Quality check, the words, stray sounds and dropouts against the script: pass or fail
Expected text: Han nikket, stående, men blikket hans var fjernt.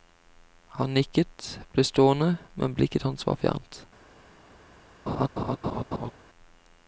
fail